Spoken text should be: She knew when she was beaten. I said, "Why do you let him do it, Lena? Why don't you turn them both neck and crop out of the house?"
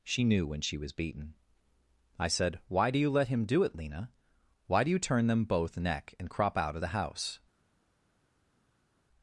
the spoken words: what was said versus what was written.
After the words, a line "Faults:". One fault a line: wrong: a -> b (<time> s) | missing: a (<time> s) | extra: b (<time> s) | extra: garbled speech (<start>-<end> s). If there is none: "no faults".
She knew when she was beaten. I said, "Why do you let him do it, Lena? Why do you turn them both neck and crop out of the house?"
Faults:
wrong: don't -> do (4.8 s)